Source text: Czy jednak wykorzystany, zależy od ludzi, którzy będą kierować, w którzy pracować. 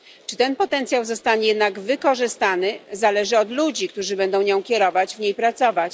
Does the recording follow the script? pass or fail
fail